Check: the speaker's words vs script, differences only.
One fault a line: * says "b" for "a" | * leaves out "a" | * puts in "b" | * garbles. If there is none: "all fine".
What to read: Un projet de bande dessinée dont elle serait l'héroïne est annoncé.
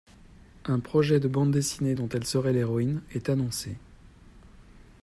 all fine